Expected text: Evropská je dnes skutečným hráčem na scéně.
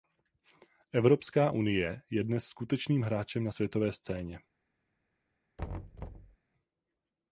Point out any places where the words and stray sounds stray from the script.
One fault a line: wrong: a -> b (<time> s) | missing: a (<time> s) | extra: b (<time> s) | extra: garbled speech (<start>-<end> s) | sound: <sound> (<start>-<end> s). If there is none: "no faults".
extra: unie (1.5 s)
extra: světové (3.5 s)
sound: thud (5.6-6.4 s)